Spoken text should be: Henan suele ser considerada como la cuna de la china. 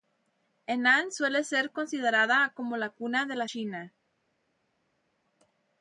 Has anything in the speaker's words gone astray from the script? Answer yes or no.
no